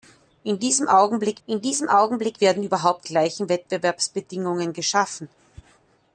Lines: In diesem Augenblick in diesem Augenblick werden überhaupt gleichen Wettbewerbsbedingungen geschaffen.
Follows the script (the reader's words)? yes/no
yes